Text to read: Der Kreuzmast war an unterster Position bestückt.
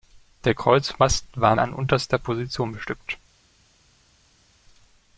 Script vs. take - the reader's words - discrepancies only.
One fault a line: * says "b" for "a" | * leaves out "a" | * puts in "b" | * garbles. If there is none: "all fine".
all fine